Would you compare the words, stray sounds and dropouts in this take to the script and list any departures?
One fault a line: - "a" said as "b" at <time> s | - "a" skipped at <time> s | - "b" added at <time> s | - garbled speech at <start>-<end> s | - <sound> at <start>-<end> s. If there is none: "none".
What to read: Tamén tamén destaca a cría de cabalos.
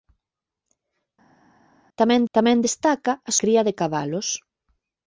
none